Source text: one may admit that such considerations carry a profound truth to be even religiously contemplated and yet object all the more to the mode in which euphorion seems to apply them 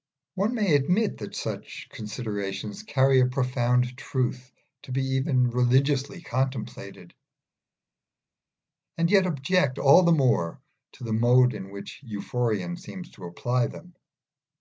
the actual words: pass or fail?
pass